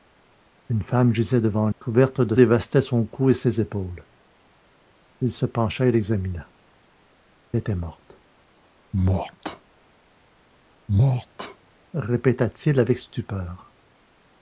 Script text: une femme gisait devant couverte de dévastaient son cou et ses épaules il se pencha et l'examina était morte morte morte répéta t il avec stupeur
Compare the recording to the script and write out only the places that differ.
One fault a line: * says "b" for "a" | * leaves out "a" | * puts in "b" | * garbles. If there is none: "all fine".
all fine